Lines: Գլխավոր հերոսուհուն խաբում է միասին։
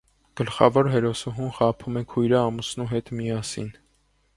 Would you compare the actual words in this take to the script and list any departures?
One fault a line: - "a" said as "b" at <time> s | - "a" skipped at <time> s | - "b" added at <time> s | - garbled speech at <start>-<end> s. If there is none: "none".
- "քույրը ամուսնու հետ" added at 2.1 s